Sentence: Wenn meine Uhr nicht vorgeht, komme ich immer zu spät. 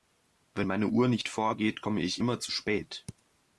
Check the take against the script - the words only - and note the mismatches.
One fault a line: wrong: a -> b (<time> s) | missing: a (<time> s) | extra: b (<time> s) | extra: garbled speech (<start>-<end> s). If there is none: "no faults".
no faults